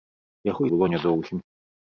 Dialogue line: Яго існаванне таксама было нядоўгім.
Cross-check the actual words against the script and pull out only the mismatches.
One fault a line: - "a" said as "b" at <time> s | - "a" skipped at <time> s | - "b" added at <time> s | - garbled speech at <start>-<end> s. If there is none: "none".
- "існаванне таксама" skipped at 0.6 s